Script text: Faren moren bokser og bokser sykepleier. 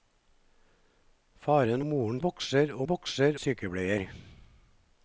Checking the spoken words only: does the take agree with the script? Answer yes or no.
yes